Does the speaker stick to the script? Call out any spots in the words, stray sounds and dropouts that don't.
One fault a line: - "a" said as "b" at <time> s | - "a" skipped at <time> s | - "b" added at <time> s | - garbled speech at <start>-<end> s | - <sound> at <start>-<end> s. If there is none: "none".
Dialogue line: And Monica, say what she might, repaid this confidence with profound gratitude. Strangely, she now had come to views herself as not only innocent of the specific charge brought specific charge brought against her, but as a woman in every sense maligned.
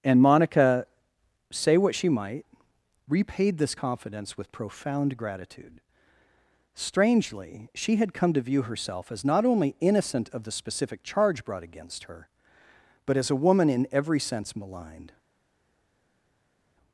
- "now" skipped at 8.0 s
- "views" said as "view" at 8.4 s
- "specific charge brought" skipped at 11.6 s